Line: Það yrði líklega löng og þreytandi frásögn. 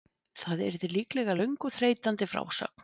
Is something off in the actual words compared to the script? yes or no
no